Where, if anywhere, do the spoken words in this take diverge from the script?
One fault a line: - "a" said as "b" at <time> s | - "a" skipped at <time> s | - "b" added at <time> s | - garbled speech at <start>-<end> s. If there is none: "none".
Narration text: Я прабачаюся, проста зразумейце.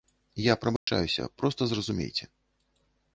none